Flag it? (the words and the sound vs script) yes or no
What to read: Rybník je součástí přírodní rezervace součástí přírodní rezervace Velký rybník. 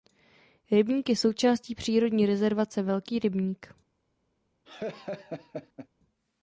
yes